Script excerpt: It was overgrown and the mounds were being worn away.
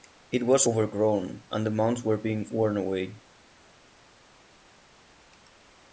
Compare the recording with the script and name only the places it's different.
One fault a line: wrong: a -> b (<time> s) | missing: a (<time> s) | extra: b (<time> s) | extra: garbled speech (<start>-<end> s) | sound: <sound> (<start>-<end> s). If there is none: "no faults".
no faults